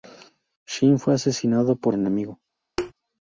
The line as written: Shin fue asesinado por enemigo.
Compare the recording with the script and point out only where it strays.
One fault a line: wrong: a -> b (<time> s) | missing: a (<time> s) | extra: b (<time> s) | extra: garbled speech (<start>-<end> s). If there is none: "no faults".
no faults